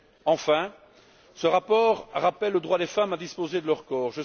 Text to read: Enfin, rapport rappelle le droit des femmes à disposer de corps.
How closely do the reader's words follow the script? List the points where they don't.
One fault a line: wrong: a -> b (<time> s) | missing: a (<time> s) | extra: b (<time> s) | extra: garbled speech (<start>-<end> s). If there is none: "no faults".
extra: ce (1.4 s)
extra: leur (3.7 s)